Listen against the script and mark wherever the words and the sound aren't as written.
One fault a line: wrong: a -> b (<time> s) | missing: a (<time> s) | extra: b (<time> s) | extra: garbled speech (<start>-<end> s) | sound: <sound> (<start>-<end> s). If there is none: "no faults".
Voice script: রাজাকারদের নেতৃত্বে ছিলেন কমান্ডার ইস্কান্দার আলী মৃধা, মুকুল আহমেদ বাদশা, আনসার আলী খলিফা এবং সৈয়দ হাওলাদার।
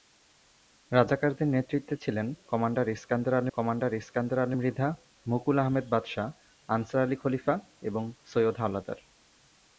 extra: কমান্ডার ইস্কান্দার আলী (3.5 s)